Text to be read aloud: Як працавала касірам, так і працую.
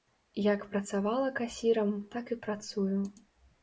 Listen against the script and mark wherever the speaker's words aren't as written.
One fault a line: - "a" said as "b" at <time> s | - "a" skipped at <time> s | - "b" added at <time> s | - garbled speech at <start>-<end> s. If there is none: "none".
none